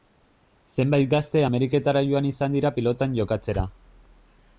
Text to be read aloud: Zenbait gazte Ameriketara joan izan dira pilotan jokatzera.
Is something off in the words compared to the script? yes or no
no